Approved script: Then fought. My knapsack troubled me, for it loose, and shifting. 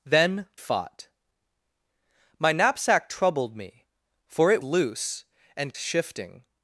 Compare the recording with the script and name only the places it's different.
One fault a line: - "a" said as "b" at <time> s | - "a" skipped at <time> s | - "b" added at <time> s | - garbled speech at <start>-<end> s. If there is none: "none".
none